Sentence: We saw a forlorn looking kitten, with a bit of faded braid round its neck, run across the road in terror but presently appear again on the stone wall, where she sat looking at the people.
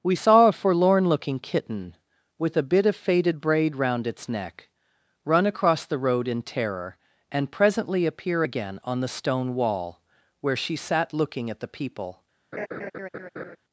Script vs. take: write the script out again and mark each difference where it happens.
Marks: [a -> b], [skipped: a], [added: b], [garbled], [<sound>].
We saw a forlorn looking kitten, with a bit of faded braid round its neck, run across the road in terror [but -> and] presently appear again on the stone wall, where she sat looking at the people. [laugh]